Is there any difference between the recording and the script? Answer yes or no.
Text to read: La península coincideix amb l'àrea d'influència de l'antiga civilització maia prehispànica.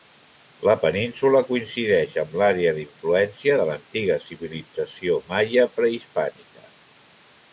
no